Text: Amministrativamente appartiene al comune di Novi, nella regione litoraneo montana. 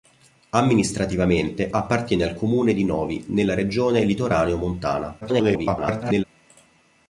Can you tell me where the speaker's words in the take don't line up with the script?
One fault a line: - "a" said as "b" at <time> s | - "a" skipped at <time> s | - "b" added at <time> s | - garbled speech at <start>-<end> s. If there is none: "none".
- garbled speech at 5.2-6.2 s